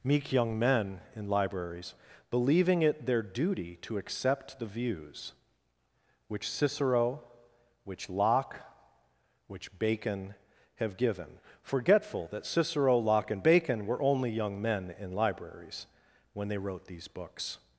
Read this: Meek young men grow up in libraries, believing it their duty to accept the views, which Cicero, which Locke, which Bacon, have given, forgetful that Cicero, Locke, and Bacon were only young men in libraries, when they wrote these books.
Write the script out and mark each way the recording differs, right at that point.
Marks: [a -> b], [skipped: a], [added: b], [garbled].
Meek young men [skipped: grow up] in libraries, believing it their duty to accept the views, which Cicero, which Locke, which Bacon, have given, forgetful that Cicero, Locke, and Bacon were only young men in libraries, when they wrote these books.